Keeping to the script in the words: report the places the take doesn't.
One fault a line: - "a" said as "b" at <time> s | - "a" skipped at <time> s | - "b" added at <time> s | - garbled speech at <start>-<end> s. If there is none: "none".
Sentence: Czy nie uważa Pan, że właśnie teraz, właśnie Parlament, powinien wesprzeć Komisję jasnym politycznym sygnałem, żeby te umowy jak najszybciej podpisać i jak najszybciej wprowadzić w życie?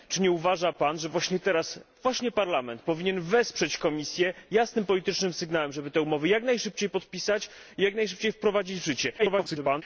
- garbled speech at 9.2-9.8 s